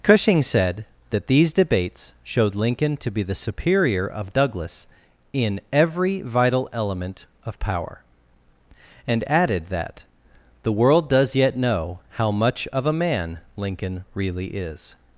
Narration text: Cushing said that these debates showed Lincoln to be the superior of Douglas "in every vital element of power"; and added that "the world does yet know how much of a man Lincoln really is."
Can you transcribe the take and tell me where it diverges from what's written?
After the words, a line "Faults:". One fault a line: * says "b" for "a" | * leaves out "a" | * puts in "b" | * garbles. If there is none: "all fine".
Cushing said that these debates showed Lincoln to be the superior of Douglas "in every vital element of power"; and added that "the world does yet know how much of a man Lincoln really is."
Faults:
all fine